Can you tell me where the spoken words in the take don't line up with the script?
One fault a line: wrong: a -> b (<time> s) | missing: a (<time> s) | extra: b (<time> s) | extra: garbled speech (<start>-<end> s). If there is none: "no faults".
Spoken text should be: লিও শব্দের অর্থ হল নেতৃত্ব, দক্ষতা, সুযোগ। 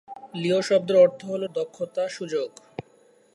missing: নেতৃত্ব (1.4 s)